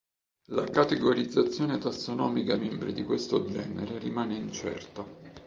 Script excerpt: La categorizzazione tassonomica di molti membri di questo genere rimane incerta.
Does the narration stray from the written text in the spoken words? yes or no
yes